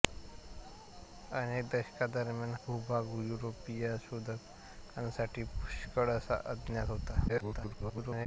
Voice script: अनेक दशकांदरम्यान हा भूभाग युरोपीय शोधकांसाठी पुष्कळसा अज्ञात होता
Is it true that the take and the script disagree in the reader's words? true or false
true